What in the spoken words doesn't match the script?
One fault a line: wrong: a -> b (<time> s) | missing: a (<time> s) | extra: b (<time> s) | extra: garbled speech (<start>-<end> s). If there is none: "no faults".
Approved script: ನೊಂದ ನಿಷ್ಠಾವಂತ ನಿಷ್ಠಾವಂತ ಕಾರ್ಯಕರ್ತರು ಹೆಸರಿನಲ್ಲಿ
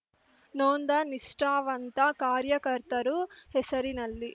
missing: ನಿಷ್ಠಾವಂತ (2.0 s)